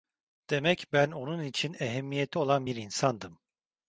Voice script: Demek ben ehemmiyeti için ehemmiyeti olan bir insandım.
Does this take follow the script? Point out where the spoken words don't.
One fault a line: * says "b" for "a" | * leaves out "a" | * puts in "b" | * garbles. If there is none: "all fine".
* says "onun" for "ehemmiyeti"